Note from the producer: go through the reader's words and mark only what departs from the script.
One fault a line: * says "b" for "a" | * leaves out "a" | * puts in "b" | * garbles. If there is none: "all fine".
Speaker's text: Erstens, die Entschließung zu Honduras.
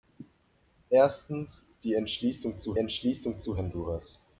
* puts in "Entschließung zu"